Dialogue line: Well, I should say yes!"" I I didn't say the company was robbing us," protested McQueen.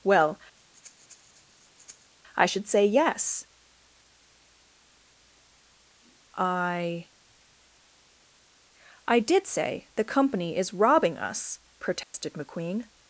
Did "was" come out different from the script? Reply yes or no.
yes